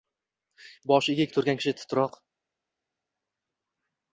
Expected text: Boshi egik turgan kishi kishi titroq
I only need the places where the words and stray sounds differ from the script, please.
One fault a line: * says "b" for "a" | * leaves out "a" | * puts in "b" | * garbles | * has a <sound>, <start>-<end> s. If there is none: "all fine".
* leaves out "kishi"